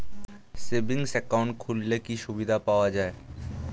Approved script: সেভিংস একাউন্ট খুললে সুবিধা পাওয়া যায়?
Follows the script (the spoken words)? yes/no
no